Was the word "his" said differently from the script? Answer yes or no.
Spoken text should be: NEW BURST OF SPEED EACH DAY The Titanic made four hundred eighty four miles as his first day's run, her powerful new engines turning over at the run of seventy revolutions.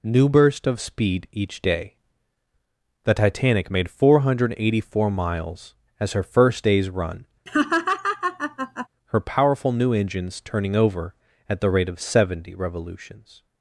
yes